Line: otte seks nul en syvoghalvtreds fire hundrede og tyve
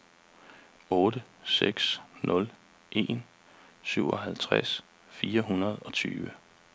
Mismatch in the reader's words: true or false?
false